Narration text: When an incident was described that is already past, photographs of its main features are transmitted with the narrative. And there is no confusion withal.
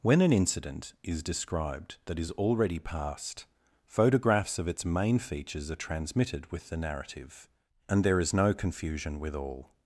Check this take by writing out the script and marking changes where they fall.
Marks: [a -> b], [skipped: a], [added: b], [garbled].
When an incident [was -> is] described that is already past, photographs of its main features are transmitted with the narrative. And there is no confusion withal.